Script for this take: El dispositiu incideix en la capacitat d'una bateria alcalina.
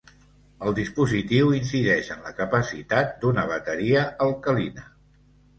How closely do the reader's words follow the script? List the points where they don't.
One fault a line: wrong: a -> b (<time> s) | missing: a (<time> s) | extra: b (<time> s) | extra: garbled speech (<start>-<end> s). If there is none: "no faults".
no faults